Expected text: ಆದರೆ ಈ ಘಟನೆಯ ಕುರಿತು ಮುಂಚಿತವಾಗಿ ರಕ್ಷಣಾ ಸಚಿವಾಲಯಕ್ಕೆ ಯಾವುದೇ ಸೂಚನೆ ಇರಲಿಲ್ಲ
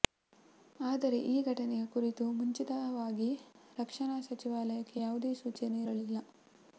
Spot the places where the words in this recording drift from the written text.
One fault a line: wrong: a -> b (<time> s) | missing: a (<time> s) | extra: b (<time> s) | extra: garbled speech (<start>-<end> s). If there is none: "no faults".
no faults